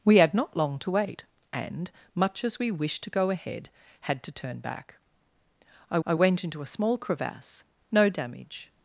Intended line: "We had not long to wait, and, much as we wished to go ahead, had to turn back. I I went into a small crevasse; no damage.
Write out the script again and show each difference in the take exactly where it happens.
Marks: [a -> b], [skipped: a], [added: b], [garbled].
"We had not long to wait, and, much as we wished to go ahead, had to turn back. I I went into a small crevasse; no damage.